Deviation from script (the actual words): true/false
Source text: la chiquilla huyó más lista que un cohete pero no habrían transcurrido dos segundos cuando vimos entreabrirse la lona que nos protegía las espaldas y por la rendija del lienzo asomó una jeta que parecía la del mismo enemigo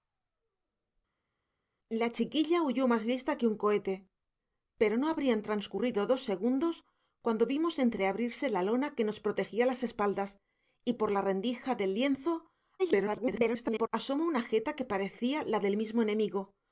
true